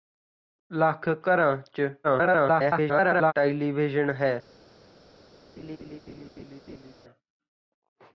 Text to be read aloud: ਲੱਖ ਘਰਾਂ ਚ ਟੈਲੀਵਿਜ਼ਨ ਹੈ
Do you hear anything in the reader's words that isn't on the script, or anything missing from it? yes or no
yes